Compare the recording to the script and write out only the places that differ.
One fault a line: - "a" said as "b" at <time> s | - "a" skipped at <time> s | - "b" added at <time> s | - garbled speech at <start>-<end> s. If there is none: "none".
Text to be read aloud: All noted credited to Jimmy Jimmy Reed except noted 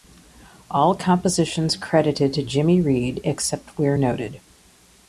- "noted" said as "compositions" at 0.9 s
- "Jimmy" skipped at 2.8 s
- "where" added at 3.8 s